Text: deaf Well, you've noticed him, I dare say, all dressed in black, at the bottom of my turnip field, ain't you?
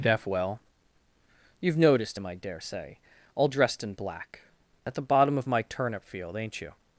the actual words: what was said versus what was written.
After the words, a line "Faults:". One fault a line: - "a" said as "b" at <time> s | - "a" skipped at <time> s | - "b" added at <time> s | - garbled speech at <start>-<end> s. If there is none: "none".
deaf Well, you've noticed him, I dare say, all dressed in black, at the bottom of my turnip field, ain't you?
Faults:
none